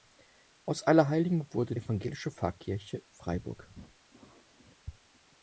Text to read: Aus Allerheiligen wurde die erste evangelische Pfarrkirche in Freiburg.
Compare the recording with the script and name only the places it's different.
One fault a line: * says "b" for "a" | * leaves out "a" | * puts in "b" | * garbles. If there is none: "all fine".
* leaves out "die erste"
* leaves out "in"